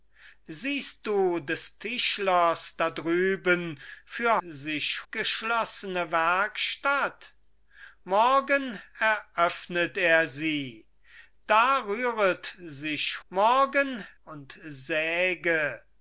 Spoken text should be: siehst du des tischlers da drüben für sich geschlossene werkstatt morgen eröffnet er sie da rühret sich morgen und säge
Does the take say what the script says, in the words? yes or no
yes